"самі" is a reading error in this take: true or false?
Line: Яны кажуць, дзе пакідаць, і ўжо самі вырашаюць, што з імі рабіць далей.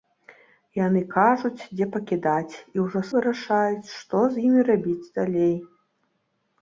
true